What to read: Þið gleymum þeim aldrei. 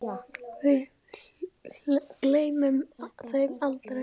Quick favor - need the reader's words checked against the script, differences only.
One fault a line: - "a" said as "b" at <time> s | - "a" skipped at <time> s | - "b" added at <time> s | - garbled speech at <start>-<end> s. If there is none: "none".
- "Þið" said as "Við" at 0.6 s